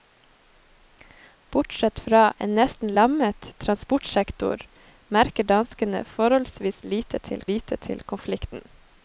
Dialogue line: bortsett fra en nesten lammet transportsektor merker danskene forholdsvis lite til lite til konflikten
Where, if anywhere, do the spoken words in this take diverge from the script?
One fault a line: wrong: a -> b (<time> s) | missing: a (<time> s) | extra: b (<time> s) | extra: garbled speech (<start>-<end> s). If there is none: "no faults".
no faults